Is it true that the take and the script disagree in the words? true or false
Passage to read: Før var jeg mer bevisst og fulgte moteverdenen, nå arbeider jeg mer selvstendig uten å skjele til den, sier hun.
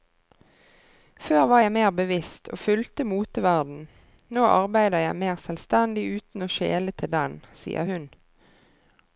false